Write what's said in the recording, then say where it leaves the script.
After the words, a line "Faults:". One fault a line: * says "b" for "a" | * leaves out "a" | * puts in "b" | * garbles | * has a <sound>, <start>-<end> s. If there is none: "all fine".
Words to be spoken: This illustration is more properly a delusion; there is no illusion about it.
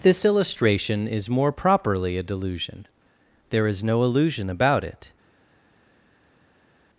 This illustration is more properly a delusion; there is no illusion about it.
Faults:
all fine